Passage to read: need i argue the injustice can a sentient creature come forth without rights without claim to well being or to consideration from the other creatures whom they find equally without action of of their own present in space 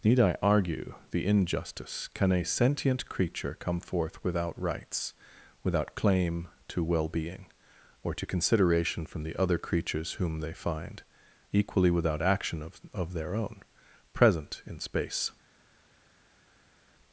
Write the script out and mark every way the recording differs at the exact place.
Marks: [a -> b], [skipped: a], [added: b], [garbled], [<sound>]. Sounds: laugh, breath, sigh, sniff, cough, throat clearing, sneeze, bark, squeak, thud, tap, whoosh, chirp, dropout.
need i argue the injustice can a sentient creature come forth without rights without claim to well being or to consideration from the other creatures whom they find equally without action of of their own present in space